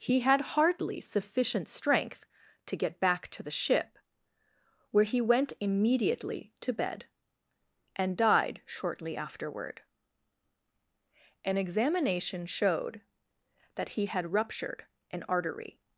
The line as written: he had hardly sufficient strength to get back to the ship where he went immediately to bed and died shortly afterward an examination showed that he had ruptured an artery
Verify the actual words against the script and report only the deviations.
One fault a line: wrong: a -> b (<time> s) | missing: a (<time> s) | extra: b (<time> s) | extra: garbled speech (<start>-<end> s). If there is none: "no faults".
no faults